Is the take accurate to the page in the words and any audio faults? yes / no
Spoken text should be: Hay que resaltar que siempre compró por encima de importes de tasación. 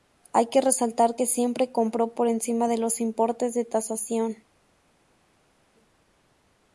no